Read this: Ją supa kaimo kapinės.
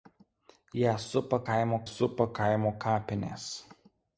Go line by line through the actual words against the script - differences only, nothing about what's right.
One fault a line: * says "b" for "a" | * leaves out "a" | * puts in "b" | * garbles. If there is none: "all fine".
* puts in "supa kaimo"